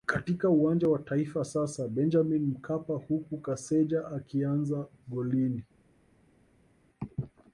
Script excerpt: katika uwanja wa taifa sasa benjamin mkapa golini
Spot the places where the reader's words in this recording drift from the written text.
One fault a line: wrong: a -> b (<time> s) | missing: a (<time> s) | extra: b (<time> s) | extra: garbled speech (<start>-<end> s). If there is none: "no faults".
extra: huku kaseja akianza (2.9 s)